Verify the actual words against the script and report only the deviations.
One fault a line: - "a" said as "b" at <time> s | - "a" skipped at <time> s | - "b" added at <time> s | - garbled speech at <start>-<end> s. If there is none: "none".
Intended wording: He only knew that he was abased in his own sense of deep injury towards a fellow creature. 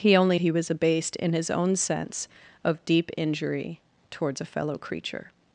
- "knew that" skipped at 0.4 s